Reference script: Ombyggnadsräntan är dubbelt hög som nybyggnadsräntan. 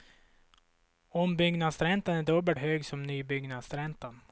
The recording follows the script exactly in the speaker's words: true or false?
true